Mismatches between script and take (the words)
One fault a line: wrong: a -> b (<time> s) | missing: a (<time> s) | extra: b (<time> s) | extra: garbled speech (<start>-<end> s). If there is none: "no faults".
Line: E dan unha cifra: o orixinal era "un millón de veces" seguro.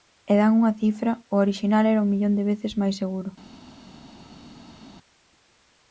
extra: máis (2.8 s)